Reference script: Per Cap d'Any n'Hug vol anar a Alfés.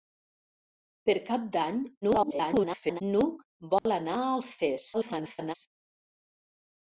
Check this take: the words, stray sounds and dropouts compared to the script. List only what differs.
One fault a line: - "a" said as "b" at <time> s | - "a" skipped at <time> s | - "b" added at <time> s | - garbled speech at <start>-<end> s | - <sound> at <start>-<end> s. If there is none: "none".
- garbled speech at 2.0-3.0 s
- dropout at 3.8-3.9 s
- garbled speech at 4.9-5.5 s